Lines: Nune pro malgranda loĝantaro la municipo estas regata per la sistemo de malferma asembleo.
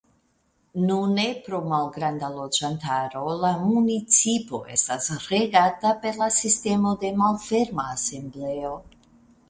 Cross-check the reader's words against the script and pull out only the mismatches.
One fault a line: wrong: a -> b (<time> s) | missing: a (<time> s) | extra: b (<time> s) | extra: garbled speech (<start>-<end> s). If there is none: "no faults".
no faults